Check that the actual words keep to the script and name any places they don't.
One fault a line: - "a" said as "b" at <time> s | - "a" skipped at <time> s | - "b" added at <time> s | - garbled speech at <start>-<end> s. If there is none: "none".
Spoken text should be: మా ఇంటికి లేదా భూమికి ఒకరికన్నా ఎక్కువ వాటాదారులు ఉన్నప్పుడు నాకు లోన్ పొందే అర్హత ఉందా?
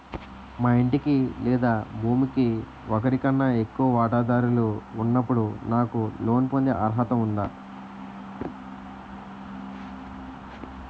none